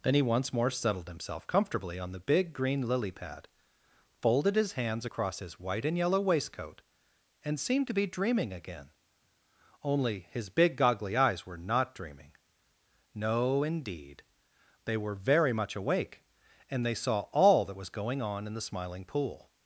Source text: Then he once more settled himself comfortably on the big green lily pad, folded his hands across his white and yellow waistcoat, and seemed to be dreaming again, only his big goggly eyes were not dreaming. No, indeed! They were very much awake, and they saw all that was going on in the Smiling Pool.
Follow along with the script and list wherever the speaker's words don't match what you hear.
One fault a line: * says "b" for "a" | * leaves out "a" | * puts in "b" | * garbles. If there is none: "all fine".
all fine